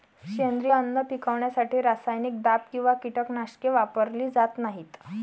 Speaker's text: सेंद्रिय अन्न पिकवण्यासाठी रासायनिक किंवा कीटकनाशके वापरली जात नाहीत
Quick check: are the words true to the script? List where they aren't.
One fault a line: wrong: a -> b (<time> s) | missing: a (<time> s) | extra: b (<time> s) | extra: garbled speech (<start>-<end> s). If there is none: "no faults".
extra: दाब (2.4 s)